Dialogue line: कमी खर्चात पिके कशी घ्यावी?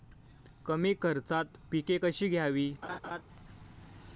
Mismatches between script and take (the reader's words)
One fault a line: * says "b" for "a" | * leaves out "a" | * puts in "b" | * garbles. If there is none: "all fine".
all fine